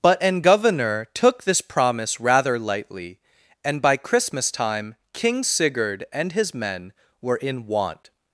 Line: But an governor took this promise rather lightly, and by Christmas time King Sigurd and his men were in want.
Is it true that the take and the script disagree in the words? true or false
false